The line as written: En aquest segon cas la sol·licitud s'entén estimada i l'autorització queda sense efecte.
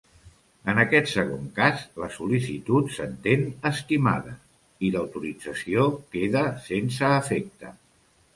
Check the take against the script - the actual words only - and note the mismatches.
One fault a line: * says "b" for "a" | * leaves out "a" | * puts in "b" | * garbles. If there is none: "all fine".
all fine